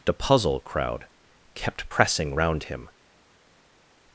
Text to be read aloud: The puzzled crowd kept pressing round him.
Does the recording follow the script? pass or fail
fail